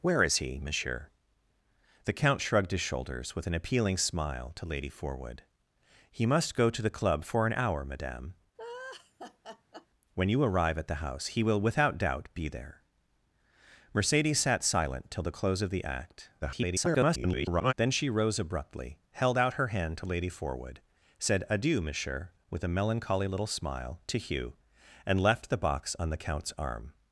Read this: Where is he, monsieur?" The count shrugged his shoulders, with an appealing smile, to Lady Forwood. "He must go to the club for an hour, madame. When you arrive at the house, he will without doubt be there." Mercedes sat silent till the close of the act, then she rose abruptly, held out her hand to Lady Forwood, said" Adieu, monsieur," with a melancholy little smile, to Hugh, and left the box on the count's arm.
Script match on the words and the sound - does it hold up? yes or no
no